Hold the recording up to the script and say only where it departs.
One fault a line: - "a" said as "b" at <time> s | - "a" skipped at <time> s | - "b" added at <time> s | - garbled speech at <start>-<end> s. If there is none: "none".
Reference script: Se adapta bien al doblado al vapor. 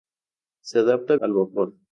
- "bien al doblado" skipped at 1.1 s